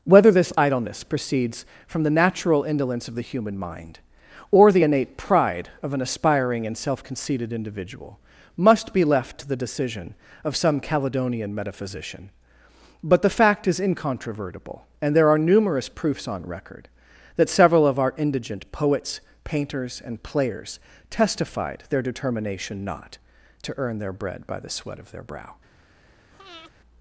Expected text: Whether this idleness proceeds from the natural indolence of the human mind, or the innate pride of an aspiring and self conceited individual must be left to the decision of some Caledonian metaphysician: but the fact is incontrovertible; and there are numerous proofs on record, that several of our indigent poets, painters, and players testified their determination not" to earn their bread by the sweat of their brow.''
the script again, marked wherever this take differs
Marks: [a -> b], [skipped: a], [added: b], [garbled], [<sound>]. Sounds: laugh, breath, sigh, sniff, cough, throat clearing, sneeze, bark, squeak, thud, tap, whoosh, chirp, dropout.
Whether this idleness proceeds from the natural indolence of the human mind, or the innate pride of an aspiring and self conceited individual must be left to the decision of some Caledonian metaphysician: but the fact is incontrovertible; and there are numerous proofs on record, that several of our indigent poets, painters, and players testified their determination not" to earn their bread by the sweat of their brow.'' [breath]